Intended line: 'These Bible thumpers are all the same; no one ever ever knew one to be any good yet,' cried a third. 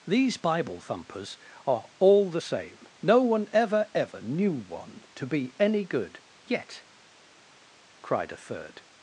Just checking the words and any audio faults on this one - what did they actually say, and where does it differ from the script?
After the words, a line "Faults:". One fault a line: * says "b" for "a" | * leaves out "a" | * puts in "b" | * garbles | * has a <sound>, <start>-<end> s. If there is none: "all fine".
'These Bible thumpers are all the same; no one ever ever knew one to be any good yet,' cried a third.
Faults:
all fine